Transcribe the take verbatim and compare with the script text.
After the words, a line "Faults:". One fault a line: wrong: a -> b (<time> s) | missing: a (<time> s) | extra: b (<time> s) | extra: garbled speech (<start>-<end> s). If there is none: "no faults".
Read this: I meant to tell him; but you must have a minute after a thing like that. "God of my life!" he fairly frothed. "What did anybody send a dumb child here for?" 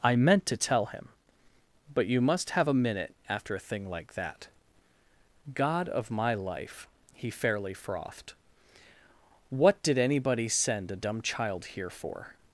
I meant to tell him; but you must have a minute after a thing like that. "God of my life!" he fairly frothed. "What did anybody send a dumb child here for?"
Faults:
no faults